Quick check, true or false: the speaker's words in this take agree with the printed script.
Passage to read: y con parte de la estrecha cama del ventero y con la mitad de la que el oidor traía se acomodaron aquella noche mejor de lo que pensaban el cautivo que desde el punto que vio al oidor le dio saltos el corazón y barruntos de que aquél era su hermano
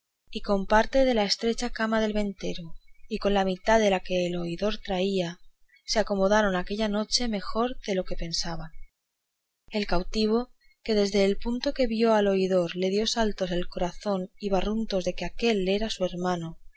true